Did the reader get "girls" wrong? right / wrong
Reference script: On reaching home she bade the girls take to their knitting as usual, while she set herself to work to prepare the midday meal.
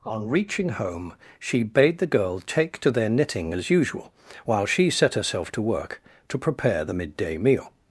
wrong